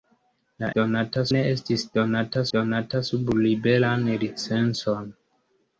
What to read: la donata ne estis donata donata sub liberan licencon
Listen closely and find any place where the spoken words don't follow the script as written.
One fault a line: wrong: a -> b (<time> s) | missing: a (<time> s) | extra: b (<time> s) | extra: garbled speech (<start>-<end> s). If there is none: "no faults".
no faults